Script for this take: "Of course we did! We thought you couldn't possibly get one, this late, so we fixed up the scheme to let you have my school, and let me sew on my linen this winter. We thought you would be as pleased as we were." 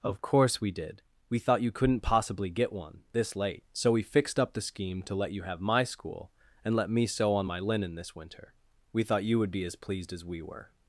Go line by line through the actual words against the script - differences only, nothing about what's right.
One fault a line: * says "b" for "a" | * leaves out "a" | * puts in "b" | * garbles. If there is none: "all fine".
all fine